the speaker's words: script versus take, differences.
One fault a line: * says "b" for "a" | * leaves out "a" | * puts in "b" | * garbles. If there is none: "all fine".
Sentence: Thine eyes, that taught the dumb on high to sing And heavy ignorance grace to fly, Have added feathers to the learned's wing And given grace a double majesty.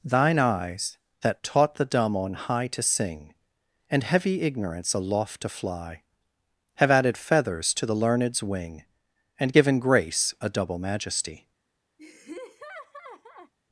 * says "aloft" for "grace"